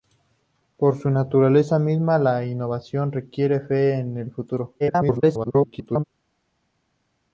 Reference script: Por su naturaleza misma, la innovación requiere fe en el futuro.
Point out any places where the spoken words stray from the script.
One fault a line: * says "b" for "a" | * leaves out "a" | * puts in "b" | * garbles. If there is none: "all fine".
* garbles